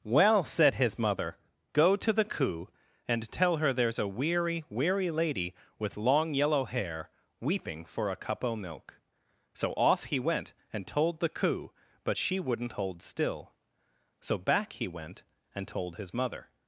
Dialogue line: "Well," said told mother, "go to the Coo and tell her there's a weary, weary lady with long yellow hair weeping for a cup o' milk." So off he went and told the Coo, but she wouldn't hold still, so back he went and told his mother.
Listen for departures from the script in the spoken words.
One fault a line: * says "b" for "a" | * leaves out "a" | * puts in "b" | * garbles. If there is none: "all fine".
* says "his" for "told"